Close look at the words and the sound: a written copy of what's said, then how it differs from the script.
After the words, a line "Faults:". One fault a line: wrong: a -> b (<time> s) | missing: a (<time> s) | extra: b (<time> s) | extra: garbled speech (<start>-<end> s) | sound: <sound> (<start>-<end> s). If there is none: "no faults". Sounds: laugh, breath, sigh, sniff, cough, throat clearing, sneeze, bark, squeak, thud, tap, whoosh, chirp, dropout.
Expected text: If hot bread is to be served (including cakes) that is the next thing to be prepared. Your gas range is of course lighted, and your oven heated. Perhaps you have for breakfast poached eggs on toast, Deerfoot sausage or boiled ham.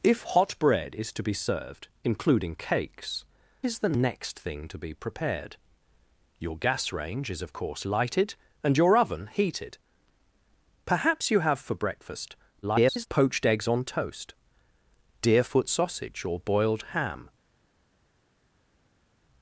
If hot bread is to be served (including cakes) is the next thing to be prepared. Your gas range is of course lighted, and your oven heated. Perhaps you have for breakfast [garbled] poached eggs on toast, Deerfoot sausage or boiled ham.
Faults:
missing: that (3.2 s)
extra: garbled speech (12.6-13.1 s)